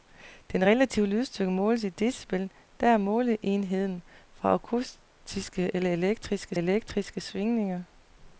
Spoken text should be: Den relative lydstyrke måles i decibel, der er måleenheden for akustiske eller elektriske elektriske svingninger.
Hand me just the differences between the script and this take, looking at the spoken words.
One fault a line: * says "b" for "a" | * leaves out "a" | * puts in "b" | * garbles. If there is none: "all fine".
all fine